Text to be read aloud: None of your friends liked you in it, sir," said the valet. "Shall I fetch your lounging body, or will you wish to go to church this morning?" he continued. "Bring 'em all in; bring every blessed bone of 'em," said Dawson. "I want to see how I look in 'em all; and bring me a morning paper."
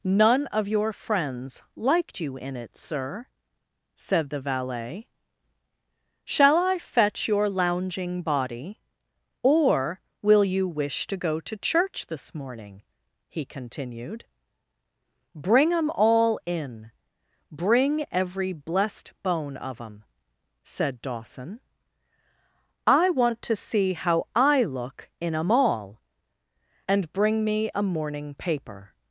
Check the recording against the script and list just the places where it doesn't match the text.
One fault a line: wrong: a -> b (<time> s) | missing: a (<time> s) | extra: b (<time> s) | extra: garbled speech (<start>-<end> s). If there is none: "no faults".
no faults